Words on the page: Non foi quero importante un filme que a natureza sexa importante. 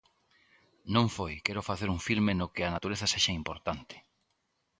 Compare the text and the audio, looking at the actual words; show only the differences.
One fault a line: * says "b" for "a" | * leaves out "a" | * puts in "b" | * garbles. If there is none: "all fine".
* says "facer" for "importante"
* puts in "no"